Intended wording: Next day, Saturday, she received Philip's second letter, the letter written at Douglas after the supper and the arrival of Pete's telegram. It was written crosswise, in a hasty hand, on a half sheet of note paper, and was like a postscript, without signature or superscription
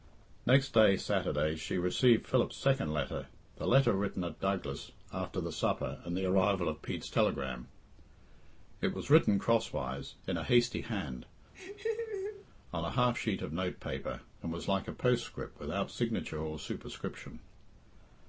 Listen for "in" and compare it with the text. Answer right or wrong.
right